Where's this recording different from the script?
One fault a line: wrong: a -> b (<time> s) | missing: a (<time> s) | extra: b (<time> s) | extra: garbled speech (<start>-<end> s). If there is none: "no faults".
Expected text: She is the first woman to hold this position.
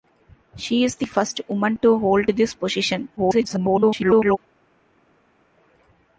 extra: garbled speech (3.2-4.4 s)